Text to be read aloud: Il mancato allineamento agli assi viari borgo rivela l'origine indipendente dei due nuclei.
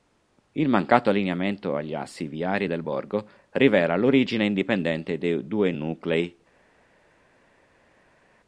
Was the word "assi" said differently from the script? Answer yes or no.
no